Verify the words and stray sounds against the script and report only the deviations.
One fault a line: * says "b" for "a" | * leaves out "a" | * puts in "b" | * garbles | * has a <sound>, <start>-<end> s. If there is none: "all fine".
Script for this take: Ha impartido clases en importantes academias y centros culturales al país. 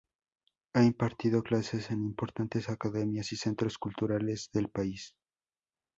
* says "del" for "al"